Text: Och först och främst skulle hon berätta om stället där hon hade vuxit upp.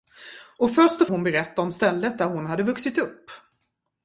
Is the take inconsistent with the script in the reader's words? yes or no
yes